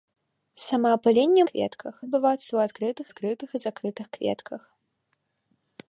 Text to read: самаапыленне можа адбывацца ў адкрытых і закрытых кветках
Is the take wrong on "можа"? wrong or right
wrong